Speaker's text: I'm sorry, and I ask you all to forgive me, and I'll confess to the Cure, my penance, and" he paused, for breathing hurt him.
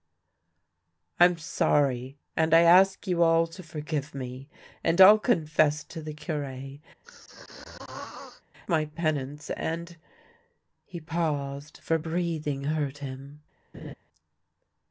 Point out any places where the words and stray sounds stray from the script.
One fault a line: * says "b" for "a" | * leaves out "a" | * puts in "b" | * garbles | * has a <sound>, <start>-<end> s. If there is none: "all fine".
* has a throat clearing, 7.0-8.4 s
* has a laugh, 13.7-13.9 s